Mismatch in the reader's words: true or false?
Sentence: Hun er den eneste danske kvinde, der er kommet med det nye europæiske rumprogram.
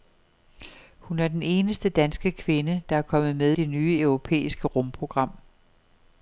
false